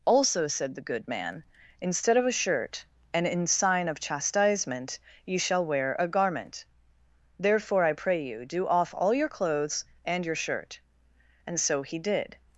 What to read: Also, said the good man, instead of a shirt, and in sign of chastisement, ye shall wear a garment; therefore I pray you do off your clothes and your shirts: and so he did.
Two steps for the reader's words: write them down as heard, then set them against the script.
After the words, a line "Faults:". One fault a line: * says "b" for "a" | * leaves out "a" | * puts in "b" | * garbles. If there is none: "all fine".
Also, said the good man, instead of a shirt, and in sign of chastisement, ye shall wear a garment; therefore I pray you do off all your clothes and your shirt: and so he did.
Faults:
* puts in "all"
* says "shirt" for "shirts"